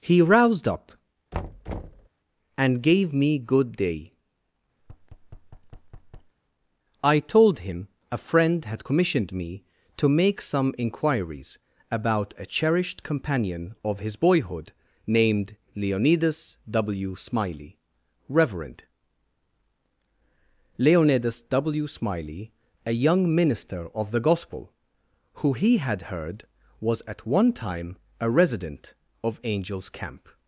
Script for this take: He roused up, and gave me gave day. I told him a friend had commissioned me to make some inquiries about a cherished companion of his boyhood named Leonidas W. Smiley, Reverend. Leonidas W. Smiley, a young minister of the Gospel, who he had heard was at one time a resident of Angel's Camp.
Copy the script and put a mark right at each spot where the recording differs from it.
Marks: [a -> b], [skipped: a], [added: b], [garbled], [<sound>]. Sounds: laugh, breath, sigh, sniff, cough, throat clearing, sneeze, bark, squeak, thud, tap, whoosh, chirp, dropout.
He roused up, [thud] and gave me [gave -> good] day. [thud] I told him a friend had commissioned me to make some inquiries about a cherished companion of his boyhood named Leonidas W. Smiley, Reverend. Leonidas W. Smiley, a young minister of the Gospel, who he had heard was at one time a resident of Angel's Camp.